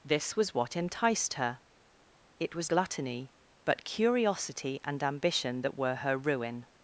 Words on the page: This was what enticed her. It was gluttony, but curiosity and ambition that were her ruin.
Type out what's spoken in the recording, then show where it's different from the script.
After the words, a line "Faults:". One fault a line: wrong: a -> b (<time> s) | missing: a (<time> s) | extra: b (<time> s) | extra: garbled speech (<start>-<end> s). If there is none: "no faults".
This was what enticed her. It was gluttony, but curiosity and ambition that were her ruin.
Faults:
no faults